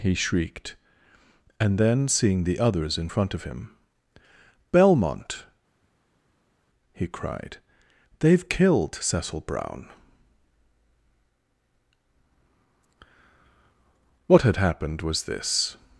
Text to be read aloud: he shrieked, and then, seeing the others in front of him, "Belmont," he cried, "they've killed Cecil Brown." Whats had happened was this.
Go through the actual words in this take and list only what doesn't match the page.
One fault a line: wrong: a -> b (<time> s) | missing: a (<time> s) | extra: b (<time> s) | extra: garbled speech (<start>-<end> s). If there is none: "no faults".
wrong: Whats -> What (14.3 s)